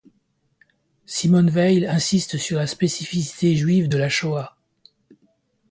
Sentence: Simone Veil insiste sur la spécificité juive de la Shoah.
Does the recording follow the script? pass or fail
pass